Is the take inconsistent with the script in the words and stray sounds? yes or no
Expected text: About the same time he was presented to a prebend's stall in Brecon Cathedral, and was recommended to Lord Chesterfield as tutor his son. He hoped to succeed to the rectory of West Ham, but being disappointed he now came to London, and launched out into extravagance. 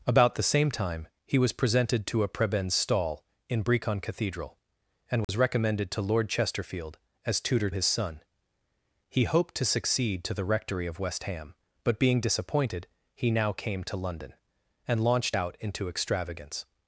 yes